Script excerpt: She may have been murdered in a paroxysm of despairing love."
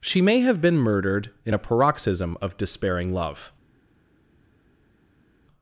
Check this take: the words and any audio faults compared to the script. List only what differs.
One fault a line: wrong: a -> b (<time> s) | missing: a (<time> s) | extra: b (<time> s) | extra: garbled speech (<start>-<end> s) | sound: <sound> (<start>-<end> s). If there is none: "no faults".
no faults